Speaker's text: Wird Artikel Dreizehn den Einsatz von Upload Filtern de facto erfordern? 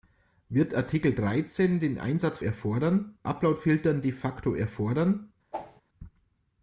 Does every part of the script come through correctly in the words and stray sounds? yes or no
no